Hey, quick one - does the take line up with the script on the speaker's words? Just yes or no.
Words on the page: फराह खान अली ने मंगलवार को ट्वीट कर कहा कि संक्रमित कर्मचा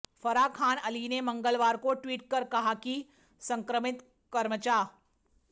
yes